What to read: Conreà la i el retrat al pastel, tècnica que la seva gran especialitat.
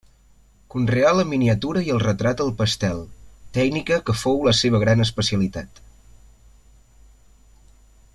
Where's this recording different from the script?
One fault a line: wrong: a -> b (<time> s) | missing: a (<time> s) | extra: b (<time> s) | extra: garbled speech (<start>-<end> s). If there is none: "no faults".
extra: miniatura (1.3 s)
extra: fou (4.2 s)